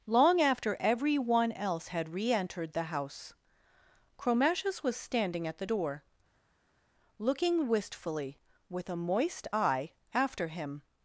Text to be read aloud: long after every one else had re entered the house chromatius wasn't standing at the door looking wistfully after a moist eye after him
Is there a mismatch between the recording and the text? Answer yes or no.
yes